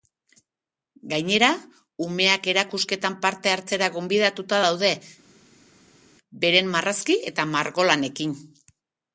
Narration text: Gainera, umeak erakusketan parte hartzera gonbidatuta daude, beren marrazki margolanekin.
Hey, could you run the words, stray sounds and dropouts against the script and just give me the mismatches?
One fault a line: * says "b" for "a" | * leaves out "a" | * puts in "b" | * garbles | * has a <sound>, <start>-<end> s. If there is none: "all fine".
* puts in "eta"